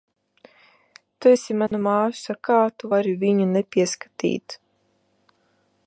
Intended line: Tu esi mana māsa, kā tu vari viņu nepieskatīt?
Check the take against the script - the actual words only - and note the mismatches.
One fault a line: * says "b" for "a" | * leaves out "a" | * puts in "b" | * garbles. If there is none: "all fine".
all fine